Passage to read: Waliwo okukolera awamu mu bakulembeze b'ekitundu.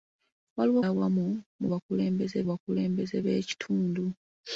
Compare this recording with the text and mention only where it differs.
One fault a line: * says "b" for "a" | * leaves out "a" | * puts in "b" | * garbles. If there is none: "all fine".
* leaves out "okukolera"
* puts in "bakulembeze"